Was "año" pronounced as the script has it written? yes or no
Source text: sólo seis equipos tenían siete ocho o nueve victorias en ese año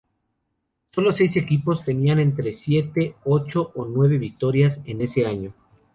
yes